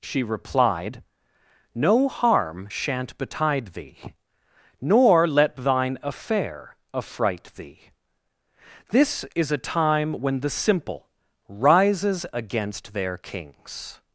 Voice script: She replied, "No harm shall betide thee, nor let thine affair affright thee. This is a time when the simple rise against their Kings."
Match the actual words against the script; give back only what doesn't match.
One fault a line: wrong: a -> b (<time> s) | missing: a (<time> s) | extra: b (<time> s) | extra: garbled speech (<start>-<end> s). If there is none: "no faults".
wrong: shall -> shan't (2.7 s)
wrong: rise -> rises (11.5 s)